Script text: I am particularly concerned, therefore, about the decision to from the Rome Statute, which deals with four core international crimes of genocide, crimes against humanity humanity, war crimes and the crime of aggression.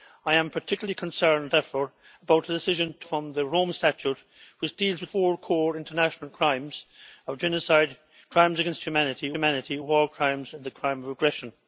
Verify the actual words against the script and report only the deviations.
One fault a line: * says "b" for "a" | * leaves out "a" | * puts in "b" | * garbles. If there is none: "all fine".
all fine